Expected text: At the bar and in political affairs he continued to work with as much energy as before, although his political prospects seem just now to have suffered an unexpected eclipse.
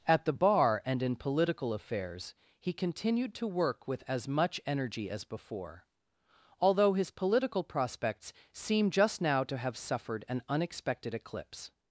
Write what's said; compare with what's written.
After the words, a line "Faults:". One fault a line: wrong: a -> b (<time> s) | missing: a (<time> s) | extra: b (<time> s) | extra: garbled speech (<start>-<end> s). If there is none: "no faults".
At the bar and in political affairs he continued to work with as much energy as before, although his political prospects seem just now to have suffered an unexpected eclipse.
Faults:
no faults